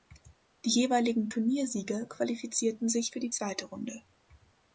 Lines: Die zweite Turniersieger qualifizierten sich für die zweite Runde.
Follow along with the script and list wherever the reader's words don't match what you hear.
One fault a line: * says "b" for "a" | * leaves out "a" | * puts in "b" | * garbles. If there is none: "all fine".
* says "jeweiligen" for "zweite"